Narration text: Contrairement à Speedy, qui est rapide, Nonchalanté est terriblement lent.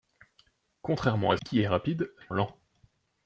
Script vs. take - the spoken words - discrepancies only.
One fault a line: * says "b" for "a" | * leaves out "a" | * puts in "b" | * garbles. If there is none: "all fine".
* leaves out "Speedy"
* leaves out "Nonchalanté est terriblement"